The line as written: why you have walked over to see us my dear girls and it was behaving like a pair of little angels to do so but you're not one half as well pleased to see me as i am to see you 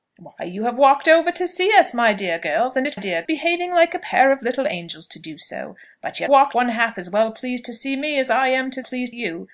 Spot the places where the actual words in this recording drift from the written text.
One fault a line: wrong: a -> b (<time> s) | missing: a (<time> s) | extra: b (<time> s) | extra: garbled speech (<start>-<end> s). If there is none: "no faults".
wrong: was -> dear (2.9 s)
wrong: not -> walked (6.3 s)
wrong: see -> pleased (8.8 s)